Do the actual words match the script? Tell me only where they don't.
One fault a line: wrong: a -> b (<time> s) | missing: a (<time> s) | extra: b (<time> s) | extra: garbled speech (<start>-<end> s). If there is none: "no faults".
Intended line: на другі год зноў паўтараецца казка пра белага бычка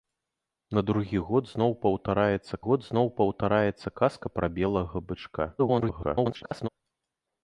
extra: год зноў паўтараецца (2.6 s)
extra: garbled speech (5.6-6.7 s)